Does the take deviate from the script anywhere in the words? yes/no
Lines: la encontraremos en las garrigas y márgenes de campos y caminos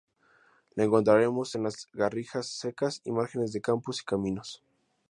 yes